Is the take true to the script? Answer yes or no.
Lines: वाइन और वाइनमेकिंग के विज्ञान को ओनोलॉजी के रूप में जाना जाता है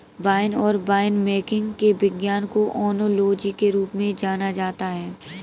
yes